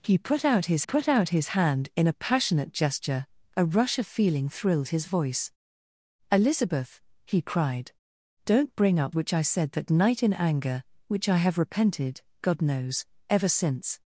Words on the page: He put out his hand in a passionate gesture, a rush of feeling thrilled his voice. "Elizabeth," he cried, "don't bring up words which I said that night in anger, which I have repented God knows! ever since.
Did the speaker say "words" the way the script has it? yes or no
no